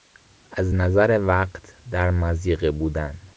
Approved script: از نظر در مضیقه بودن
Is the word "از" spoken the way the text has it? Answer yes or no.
yes